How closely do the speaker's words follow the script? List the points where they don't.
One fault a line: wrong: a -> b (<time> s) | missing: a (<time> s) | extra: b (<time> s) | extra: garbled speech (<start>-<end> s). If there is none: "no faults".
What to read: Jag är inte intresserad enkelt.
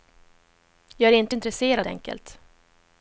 no faults